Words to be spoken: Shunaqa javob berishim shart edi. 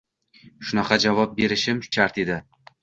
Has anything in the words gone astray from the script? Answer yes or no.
no